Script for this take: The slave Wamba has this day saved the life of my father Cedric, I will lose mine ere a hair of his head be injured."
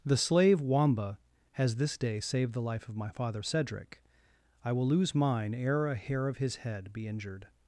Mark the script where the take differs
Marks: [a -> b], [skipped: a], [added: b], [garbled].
The slave Wamba has this day saved the life of my father Cedric, I will lose mine ere a hair of his head be injured."